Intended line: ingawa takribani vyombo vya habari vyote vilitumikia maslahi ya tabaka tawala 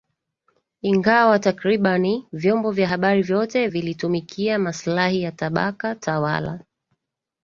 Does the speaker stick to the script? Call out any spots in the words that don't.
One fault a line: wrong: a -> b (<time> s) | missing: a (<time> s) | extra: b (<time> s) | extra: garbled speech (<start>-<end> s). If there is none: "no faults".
no faults